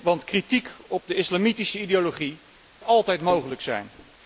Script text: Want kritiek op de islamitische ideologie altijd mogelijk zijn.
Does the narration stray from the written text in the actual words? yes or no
no